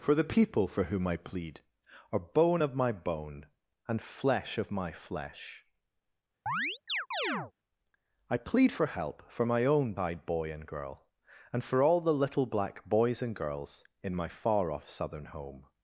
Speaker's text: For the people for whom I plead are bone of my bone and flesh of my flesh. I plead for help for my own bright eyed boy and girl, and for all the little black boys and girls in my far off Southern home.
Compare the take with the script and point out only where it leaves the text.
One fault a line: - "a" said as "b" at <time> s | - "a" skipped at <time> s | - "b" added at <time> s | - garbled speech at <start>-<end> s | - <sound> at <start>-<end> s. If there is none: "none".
- chirp at 6.5-7.5 s
- "bright" skipped at 9.9 s